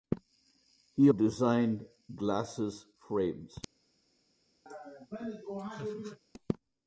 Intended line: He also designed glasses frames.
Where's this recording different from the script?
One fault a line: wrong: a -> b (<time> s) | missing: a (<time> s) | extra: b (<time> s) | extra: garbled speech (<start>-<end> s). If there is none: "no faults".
missing: also (1.1 s)